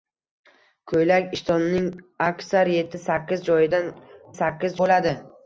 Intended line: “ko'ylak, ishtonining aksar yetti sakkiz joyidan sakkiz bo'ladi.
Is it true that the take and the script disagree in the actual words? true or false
false